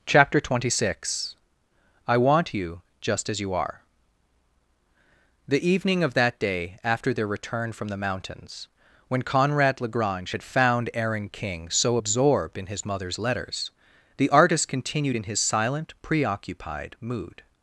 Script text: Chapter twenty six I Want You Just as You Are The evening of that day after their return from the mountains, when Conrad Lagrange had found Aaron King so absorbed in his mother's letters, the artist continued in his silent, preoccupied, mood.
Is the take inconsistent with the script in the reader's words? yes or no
no